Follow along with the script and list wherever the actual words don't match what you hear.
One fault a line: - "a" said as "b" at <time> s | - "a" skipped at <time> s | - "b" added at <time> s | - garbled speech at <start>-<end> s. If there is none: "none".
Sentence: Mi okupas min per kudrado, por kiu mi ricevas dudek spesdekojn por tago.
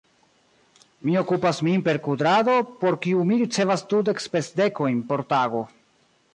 none